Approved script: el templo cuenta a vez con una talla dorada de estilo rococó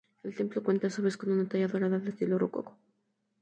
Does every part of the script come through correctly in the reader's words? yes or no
no